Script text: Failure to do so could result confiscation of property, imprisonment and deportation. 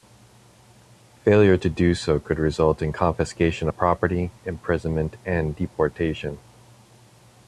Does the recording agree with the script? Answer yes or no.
no